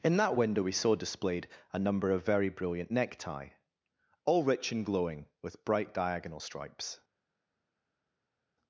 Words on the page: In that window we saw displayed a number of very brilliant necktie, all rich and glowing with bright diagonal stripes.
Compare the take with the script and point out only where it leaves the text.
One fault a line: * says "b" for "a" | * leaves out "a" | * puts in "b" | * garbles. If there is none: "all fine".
all fine